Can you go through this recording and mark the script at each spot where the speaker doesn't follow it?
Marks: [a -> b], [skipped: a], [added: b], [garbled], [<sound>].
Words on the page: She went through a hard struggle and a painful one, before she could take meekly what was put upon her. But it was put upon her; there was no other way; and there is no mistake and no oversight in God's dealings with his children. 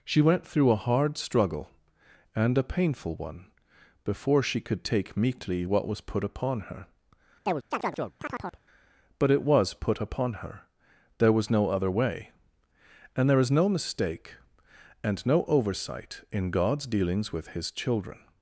She went through a hard struggle and a painful one, before she could take meekly what was put upon her. [chirp] But it was put upon her; there was no other way; and there is no mistake and no oversight in God's dealings with his children.